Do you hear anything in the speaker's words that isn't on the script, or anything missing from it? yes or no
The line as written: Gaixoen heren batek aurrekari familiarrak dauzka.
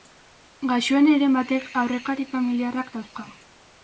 no